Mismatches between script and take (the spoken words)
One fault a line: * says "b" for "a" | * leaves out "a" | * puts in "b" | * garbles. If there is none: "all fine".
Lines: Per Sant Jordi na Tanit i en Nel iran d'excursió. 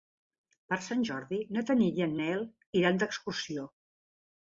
all fine